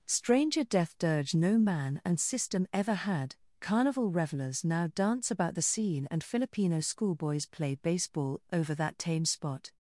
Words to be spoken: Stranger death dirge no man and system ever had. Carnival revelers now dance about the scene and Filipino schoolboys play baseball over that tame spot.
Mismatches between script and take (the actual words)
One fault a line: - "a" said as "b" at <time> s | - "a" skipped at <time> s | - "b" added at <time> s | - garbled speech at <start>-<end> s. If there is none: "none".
none